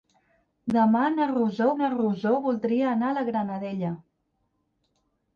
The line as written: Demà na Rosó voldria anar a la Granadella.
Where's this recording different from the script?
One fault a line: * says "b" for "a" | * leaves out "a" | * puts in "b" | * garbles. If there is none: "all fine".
* puts in "na Rosó"